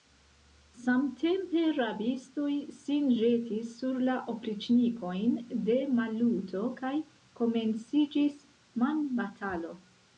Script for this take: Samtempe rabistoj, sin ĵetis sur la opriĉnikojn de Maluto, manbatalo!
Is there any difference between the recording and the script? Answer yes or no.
yes